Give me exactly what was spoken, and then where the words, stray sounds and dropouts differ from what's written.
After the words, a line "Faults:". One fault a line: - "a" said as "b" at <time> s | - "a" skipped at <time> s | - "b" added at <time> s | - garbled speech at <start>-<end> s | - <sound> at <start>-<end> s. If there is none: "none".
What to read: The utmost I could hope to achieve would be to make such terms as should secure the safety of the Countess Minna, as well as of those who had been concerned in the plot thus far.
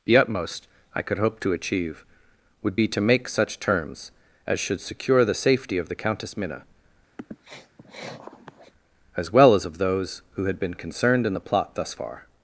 The utmost I could hope to achieve would be to make such terms as should secure the safety of the Countess Minna, as well as of those who had been concerned in the plot thus far.
Faults:
- sniff at 7.2-8.7 s